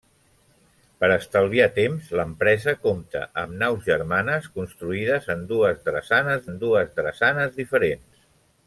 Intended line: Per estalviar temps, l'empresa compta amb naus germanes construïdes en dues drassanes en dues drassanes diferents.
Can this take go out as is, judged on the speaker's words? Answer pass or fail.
pass